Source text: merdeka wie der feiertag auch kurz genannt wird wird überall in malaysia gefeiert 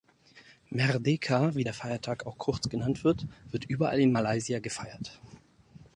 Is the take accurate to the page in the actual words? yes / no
yes